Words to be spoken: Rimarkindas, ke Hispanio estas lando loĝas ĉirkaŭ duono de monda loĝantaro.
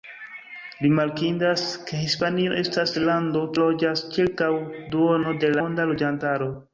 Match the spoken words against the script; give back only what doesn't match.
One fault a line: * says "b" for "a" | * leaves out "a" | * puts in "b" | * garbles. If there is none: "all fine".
all fine